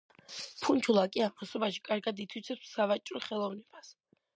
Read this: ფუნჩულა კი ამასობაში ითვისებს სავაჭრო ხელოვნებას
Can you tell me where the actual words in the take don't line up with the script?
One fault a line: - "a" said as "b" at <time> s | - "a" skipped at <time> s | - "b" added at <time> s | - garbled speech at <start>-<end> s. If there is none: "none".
- "კარგად" added at 1.9 s